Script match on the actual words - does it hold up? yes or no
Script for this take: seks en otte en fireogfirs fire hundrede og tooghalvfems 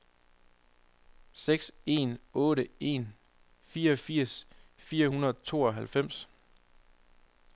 yes